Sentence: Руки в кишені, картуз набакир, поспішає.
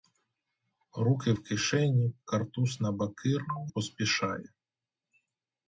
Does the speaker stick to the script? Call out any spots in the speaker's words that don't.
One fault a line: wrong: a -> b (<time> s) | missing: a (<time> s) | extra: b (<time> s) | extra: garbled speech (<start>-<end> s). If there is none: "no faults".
no faults